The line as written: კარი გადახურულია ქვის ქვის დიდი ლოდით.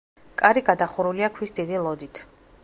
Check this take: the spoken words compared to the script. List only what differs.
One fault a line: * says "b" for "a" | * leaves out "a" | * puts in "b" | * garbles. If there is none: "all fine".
* leaves out "ქვის"